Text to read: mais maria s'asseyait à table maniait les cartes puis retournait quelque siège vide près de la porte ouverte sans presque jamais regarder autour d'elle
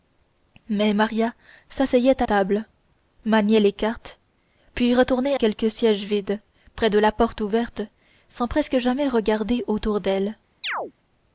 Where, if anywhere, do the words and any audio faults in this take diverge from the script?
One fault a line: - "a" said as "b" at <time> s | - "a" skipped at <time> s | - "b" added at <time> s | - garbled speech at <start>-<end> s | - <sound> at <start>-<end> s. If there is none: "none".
- chirp at 10.6-10.9 s